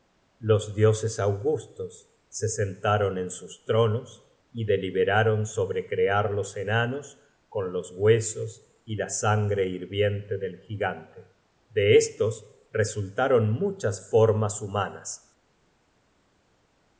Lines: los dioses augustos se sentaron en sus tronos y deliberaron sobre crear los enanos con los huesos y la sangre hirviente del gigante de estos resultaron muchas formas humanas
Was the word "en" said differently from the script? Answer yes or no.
no